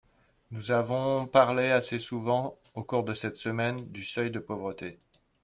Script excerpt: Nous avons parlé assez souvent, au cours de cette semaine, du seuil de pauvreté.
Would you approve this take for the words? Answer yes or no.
yes